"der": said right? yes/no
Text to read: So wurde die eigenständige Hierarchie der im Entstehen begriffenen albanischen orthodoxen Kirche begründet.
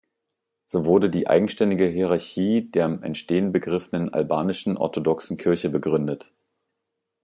yes